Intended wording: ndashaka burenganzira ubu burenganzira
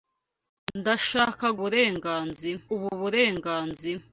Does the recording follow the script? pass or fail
pass